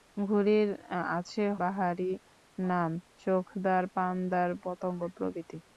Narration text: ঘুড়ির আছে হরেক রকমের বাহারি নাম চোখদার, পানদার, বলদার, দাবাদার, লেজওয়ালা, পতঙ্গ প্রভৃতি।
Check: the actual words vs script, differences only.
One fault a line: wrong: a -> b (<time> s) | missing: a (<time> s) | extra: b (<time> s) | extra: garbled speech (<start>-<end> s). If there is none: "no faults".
missing: হরেক রকমের (1.4 s)
missing: বলদার দাবাদার লেজওয়ালা (4.5 s)